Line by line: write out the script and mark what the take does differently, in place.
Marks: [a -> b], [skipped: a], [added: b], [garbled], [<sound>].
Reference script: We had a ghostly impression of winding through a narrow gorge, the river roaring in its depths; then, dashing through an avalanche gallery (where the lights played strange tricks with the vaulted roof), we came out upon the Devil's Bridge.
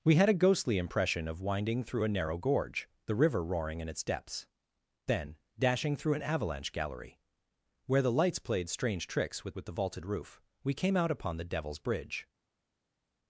We had a ghostly impression of winding through a narrow gorge, the river roaring in its depths; then, dashing through an avalanche gallery (where the lights played strange tricks with [added: with] the vaulted roof), we came out upon the Devil's Bridge.